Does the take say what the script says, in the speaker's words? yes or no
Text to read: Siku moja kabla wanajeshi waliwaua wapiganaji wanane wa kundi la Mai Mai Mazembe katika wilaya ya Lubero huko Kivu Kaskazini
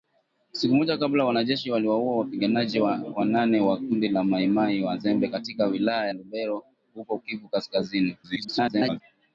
no